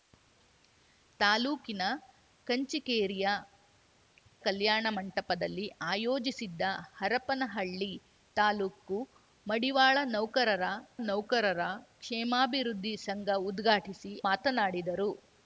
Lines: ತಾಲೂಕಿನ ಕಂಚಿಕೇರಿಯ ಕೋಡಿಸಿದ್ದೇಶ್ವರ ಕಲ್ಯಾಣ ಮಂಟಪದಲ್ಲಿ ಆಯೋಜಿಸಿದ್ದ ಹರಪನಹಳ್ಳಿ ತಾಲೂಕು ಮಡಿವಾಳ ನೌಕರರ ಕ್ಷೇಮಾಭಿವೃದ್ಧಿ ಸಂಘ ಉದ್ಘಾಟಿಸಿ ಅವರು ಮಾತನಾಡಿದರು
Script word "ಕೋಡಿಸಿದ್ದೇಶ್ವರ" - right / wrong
wrong